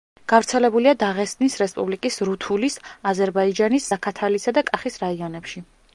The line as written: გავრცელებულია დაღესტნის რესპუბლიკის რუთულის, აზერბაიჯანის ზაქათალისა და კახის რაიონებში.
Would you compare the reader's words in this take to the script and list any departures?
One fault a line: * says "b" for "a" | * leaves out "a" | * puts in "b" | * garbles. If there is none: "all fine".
all fine